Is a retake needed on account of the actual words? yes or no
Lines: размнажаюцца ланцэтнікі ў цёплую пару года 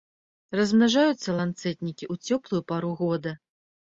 no